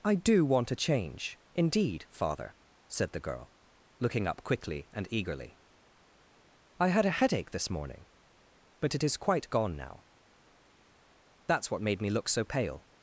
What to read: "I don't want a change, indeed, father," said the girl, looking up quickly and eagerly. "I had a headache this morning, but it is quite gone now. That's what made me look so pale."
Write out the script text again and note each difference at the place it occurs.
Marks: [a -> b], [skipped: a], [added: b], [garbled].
"I [don't -> do] want a change, indeed, father," said the girl, looking up quickly and eagerly. "I had a headache this morning, but it is quite gone now. That's what made me look so pale."